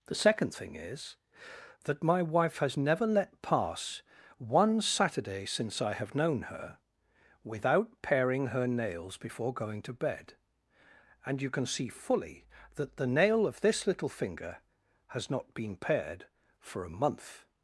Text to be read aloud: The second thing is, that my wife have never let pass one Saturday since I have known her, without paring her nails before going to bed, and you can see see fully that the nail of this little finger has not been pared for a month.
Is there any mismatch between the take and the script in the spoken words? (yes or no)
yes